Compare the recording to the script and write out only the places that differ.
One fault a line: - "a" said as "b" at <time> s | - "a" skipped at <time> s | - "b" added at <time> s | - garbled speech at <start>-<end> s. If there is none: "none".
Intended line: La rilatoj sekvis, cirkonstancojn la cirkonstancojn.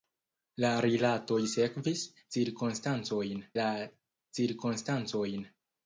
none